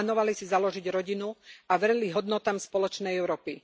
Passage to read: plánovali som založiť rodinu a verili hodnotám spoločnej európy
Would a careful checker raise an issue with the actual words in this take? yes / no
yes